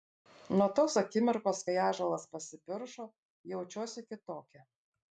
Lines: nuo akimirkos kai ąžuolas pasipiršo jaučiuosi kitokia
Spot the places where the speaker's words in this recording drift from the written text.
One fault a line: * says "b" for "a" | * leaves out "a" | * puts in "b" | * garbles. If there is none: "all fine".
* puts in "tos"